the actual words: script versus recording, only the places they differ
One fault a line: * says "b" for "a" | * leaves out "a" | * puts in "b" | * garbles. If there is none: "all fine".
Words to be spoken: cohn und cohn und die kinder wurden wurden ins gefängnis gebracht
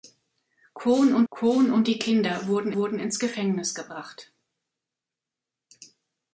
all fine